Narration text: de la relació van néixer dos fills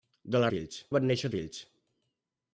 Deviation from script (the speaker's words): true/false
true